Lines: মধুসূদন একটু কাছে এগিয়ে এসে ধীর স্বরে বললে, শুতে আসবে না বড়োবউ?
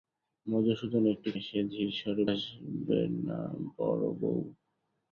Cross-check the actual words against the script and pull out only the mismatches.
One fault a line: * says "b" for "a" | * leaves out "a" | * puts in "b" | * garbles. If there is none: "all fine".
* leaves out "কাছে এগিয়ে"
* leaves out "বললে শুতে"